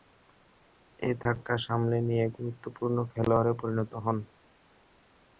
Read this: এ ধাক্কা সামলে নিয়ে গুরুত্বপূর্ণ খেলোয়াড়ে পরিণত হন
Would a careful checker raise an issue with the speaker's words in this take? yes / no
no